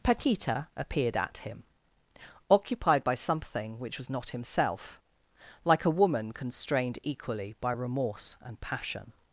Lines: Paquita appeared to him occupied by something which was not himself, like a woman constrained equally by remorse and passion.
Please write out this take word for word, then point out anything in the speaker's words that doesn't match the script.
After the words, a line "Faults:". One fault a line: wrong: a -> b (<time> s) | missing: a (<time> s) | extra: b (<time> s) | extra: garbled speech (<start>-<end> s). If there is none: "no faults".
Paquita appeared at him occupied by something which was not himself, like a woman constrained equally by remorse and passion.
Faults:
wrong: to -> at (1.2 s)